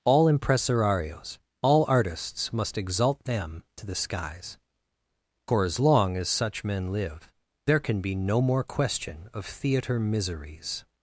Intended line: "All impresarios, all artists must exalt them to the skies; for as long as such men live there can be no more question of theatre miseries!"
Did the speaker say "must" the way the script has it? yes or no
yes